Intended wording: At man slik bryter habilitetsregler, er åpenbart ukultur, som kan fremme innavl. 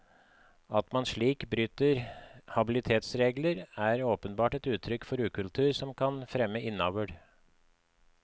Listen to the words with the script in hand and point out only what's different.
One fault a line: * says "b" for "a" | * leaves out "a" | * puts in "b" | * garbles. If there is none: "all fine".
* puts in "et uttrykk for"